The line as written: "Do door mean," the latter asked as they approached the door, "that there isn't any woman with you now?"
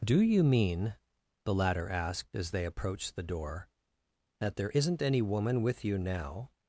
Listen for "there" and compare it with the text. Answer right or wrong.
right